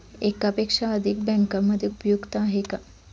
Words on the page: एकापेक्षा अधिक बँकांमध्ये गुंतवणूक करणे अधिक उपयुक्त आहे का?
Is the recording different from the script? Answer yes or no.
yes